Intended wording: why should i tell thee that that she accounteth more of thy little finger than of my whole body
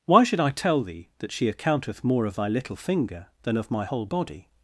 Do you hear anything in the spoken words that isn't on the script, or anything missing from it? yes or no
yes